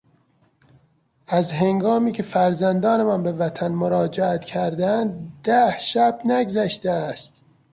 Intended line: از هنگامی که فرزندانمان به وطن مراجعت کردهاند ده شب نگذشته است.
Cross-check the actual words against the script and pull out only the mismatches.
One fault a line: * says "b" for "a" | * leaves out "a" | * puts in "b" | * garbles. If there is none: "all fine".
all fine